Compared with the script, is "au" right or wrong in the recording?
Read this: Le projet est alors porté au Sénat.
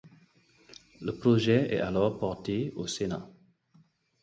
right